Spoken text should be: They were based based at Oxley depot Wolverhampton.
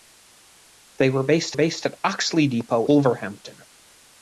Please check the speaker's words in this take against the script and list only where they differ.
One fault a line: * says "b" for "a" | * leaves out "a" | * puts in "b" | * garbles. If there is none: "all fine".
all fine